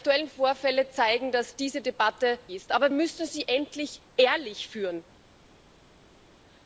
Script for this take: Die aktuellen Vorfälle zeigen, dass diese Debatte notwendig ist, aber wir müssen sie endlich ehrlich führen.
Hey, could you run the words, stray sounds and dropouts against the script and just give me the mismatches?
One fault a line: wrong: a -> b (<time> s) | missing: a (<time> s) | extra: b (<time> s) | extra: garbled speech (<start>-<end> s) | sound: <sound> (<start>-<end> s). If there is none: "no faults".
missing: notwendig (2.4 s)
missing: wir (2.9 s)